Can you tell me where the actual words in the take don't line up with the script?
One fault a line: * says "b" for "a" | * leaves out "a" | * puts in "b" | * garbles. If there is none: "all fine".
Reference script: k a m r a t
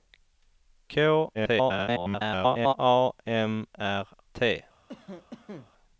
* garbles
* leaves out "a"